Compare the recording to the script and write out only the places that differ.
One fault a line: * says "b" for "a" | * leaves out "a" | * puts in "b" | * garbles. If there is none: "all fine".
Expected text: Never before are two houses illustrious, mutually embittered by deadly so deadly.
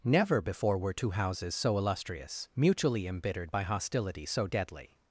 * says "were" for "are"
* puts in "so"
* says "hostility" for "deadly"